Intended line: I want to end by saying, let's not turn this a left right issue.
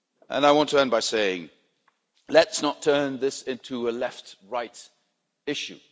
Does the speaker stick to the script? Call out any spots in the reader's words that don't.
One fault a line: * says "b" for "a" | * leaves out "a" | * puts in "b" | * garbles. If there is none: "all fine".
* puts in "into"